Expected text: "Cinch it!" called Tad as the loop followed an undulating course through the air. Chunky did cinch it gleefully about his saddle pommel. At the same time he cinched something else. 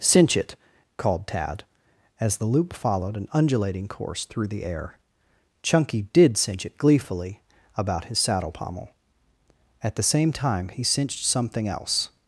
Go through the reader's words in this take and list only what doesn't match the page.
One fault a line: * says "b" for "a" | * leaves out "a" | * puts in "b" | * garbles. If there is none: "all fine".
all fine